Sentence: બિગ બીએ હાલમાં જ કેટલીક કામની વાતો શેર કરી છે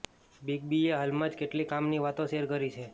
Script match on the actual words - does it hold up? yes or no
yes